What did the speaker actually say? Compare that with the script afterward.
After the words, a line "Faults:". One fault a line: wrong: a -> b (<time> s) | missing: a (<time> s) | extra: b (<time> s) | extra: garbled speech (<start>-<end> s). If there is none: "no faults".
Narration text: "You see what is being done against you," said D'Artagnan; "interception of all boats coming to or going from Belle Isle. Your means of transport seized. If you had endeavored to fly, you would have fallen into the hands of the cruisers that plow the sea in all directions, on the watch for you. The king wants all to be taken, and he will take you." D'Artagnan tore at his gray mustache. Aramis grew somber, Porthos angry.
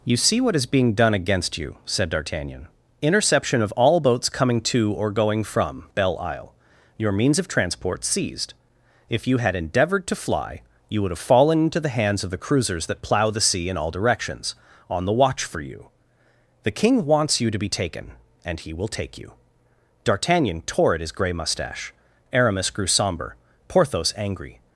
"You see what is being done against you," said D'Artagnan; "interception of all boats coming to or going from Belle Isle. Your means of transport seized. If you had endeavored to fly, you would have fallen into the hands of the cruisers that plow the sea in all directions, on the watch for you. The king wants you to be taken, and he will take you." D'Artagnan tore at his gray mustache. Aramis grew somber, Porthos angry.
Faults:
wrong: all -> you (17.4 s)